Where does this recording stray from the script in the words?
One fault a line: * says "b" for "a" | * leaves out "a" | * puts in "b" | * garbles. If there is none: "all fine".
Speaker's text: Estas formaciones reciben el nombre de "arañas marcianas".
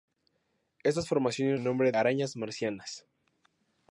* leaves out "reciben"
* leaves out "de"